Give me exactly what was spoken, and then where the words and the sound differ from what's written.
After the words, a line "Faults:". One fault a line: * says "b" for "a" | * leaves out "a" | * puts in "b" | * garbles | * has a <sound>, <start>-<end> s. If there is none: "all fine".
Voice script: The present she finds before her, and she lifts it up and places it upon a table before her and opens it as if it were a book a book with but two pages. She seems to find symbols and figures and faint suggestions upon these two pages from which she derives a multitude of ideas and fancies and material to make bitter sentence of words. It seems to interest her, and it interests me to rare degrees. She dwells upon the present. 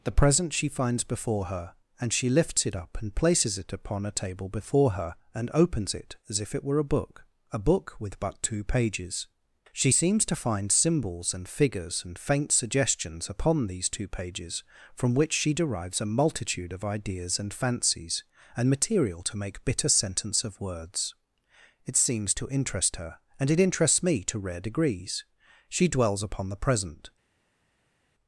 The present she finds before her, and she lifts it up and places it upon a table before her and opens it as if it were a book a book with but two pages. She seems to find symbols and figures and faint suggestions upon these two pages from which she derives a multitude of ideas and fancies and material to make bitter sentence of words. It seems to interest her, and it interests me to rare degrees. She dwells upon the present.
Faults:
all fine